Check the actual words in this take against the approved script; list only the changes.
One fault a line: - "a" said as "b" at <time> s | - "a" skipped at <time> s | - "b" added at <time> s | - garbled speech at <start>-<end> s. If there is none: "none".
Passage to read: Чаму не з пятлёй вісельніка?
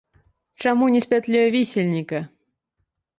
none